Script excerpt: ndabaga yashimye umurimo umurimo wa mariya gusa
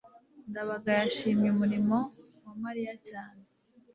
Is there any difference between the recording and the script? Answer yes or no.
yes